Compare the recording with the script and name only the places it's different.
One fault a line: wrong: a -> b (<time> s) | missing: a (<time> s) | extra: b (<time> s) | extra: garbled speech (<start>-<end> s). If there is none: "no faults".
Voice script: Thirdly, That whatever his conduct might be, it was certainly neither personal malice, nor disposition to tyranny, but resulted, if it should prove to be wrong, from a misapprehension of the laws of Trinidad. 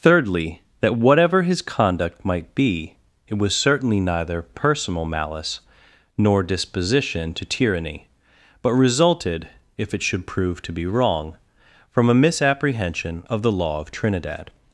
wrong: laws -> law (13.5 s)